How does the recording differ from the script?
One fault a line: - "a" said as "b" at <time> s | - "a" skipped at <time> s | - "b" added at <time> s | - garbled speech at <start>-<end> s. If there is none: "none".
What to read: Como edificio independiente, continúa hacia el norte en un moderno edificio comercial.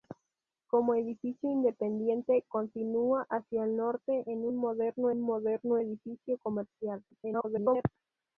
- "un moderno" added at 5.1 s
- garbled speech at 7.1-7.9 s